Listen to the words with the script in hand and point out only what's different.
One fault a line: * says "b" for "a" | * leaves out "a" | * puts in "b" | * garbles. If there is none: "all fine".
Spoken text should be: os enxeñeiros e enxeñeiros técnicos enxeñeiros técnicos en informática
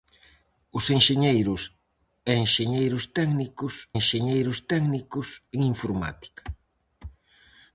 all fine